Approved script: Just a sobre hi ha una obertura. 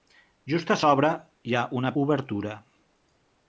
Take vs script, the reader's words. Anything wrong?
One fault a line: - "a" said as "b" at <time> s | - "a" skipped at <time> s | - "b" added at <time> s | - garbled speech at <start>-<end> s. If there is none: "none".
none